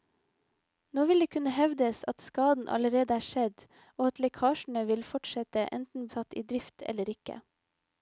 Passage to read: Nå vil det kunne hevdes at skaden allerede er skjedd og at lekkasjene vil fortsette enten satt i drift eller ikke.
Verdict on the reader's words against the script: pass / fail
pass